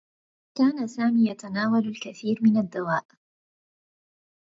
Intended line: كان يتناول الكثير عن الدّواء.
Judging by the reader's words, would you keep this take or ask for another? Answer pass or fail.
fail